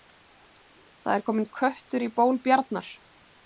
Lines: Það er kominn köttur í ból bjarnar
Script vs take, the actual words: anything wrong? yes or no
no